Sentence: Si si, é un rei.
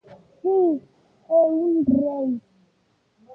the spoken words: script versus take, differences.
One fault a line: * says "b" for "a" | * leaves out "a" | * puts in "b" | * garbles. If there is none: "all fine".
* leaves out "si"